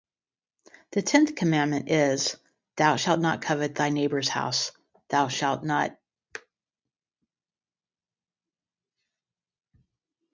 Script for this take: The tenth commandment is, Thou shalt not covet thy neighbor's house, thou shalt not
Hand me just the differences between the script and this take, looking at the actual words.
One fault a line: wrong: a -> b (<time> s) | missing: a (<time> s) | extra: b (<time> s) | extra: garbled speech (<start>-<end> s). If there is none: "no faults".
no faults